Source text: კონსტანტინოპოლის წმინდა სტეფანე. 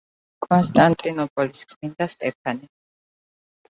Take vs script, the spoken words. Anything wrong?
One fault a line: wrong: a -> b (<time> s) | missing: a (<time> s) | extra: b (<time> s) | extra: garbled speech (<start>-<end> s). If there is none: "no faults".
no faults